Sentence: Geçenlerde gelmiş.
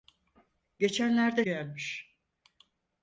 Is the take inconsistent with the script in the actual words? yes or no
no